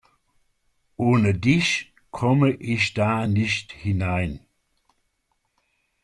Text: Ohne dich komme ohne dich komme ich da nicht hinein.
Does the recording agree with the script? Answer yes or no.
no